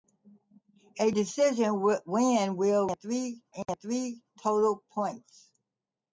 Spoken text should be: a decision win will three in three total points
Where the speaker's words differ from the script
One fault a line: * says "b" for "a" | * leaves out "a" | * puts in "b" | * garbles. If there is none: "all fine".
all fine